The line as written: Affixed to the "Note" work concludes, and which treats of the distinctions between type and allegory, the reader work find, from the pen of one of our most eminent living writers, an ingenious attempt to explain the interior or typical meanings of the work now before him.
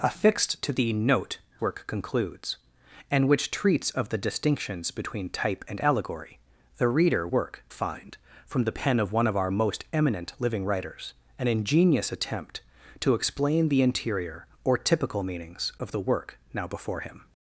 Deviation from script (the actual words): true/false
false